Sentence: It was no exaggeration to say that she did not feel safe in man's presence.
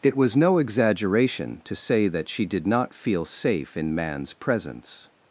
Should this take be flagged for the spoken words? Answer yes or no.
no